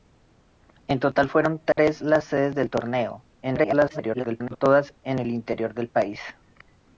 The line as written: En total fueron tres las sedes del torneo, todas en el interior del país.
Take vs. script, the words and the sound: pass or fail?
fail